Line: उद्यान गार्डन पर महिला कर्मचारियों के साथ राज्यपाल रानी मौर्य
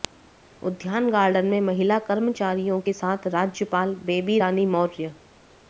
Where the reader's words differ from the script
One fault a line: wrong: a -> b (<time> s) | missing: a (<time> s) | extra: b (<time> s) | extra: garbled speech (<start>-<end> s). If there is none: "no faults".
wrong: पर -> में (1.4 s)
extra: बेबी (4.0 s)